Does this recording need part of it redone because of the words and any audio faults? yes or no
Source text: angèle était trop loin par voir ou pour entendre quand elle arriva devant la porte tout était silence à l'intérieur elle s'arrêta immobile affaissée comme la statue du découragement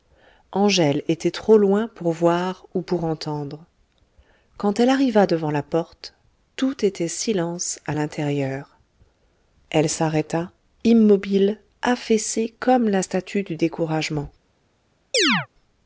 yes